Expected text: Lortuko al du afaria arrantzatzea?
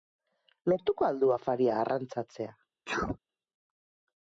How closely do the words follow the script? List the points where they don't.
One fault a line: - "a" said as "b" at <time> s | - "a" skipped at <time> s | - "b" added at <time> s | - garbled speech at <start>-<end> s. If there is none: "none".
none